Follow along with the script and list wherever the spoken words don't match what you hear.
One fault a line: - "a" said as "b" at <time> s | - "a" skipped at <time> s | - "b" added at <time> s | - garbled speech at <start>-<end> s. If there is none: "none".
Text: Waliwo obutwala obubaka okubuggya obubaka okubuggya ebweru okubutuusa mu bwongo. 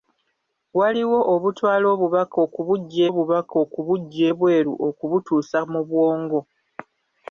none